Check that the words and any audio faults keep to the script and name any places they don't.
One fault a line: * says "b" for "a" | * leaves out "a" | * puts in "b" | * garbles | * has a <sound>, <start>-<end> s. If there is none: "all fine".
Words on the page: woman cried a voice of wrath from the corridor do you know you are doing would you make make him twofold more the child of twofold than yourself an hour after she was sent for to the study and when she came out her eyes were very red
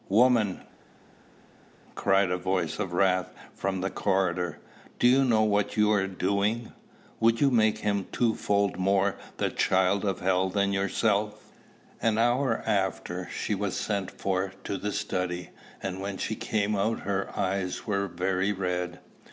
* puts in "what"
* leaves out "make"
* says "hell" for "twofold"